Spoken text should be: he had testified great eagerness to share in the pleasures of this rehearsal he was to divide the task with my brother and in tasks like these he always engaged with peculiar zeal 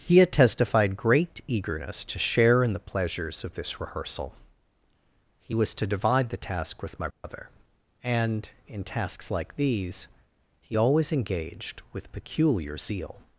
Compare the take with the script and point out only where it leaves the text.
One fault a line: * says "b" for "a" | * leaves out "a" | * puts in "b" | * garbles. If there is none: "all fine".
all fine